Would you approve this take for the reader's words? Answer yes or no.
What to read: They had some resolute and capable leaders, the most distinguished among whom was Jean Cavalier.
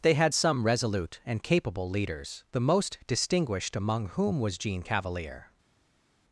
yes